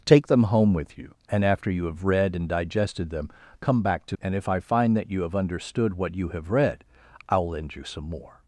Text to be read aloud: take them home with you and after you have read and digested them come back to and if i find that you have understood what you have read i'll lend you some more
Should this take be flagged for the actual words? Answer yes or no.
no